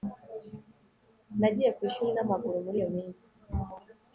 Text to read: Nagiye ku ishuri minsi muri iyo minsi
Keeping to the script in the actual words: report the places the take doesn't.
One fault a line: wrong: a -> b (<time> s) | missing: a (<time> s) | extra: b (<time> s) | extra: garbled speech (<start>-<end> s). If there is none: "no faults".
wrong: minsi -> namaguru (2.1 s)